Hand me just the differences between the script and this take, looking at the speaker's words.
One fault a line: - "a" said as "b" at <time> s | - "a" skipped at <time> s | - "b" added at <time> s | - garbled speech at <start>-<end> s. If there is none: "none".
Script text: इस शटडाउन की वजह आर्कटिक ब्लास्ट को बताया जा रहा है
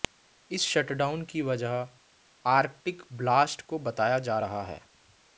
none